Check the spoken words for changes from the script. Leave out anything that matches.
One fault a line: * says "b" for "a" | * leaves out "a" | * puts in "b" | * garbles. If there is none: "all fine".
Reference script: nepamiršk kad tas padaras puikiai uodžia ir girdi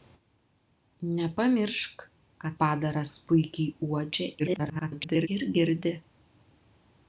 * leaves out "tas"
* garbles